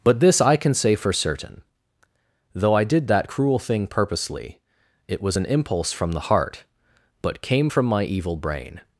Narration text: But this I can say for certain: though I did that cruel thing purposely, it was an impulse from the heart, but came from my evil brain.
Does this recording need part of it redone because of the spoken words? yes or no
no